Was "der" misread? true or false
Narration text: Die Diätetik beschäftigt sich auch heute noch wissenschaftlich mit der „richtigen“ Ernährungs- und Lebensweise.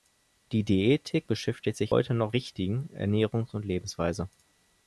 true